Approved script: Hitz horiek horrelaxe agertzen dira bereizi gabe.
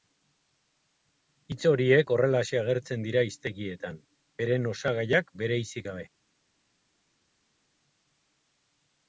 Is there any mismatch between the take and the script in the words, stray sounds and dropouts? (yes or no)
yes